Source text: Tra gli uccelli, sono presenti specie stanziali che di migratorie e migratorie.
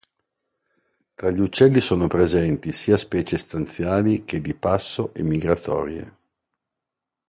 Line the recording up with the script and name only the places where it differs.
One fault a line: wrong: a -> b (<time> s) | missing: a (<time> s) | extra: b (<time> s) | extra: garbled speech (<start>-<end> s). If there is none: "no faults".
extra: sia (2.7 s)
wrong: migratorie -> passo (4.5 s)